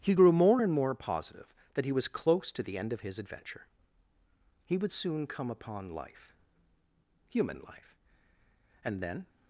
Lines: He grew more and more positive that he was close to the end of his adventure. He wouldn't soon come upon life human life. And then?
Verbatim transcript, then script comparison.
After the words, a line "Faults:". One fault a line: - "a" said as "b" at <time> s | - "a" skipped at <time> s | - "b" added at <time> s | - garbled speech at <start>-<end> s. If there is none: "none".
He grew more and more positive that he was close to the end of his adventure. He would soon come upon life human life. And then?
Faults:
- "wouldn't" said as "would" at 4.8 s